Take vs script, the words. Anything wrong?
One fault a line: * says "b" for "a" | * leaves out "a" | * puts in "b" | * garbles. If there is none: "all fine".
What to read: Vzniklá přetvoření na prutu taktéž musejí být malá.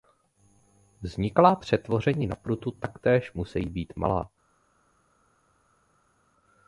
all fine